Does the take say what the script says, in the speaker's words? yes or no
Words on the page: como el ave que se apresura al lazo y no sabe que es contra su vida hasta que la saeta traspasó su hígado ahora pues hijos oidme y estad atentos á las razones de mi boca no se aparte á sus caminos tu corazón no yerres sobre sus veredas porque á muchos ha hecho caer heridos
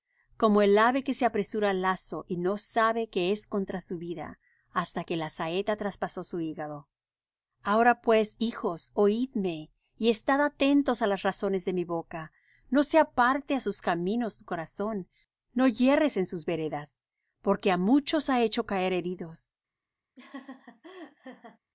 no